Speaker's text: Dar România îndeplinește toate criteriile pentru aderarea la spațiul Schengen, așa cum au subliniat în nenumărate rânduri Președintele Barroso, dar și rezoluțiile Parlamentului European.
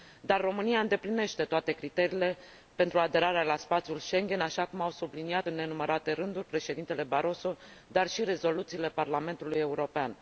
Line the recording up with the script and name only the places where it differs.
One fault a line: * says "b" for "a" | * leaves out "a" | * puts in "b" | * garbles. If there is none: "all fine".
all fine